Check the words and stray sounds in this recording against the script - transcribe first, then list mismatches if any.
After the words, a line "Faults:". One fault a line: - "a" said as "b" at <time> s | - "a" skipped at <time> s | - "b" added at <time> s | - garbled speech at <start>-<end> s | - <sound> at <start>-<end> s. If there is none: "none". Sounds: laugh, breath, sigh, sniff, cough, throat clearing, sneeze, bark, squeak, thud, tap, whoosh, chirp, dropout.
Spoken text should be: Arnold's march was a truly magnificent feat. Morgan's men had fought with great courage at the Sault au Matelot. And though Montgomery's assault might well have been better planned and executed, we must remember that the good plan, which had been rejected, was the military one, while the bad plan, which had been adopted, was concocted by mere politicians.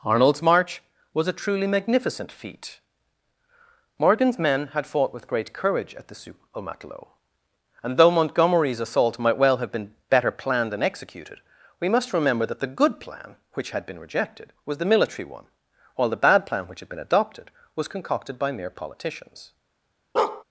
Arnold's march was a truly magnificent feat. Morgan's men had fought with great courage at the Sault au Matelot. And though Montgomery's assault might well have been better planned and executed, we must remember that the good plan, which had been rejected, was the military one, while the bad plan, which had been adopted, was concocted by mere politicians.
Faults:
- bark at 20.2-20.4 s